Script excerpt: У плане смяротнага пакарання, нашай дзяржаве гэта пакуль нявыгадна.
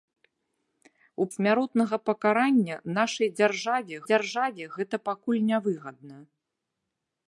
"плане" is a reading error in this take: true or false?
true